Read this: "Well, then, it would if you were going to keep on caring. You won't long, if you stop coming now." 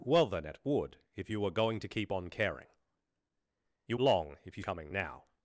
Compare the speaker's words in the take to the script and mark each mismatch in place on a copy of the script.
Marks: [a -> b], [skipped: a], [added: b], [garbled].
"Well, then, it would if you were going to keep on caring. You [skipped: won't] long, if you [skipped: stop] coming now."